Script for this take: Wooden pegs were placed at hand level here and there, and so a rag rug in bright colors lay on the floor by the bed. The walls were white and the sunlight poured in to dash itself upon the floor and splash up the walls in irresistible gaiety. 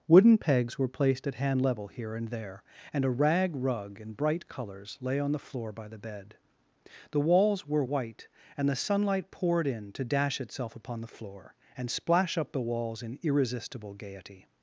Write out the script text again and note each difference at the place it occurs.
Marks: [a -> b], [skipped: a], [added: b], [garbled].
Wooden pegs were placed at hand level here and there, and [skipped: so] a rag rug in bright colors lay on the floor by the bed. The walls were white and the sunlight poured in to dash itself upon the floor and splash up the walls in irresistible gaiety.